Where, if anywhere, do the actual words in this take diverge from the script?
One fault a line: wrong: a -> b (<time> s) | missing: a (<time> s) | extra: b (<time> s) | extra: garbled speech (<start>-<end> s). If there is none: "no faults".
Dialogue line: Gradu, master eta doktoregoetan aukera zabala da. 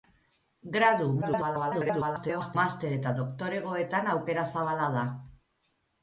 extra: garbled speech (1.2-2.6 s)